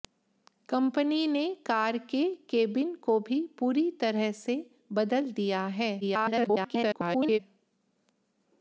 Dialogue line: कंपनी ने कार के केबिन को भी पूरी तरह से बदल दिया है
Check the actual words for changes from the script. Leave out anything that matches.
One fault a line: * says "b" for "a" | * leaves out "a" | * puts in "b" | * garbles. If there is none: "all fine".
* garbles